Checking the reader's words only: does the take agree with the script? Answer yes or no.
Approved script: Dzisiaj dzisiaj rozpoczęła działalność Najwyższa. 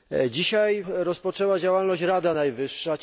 no